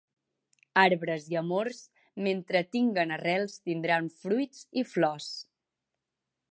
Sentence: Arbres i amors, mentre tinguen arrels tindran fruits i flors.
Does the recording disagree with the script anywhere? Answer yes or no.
no